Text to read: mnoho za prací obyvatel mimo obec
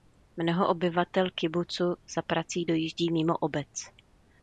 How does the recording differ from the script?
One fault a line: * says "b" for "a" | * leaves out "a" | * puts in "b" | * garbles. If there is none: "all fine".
* puts in "obyvatel kibucu"
* says "dojíždí" for "obyvatel"